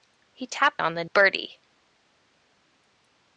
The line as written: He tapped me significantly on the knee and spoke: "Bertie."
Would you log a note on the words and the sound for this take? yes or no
yes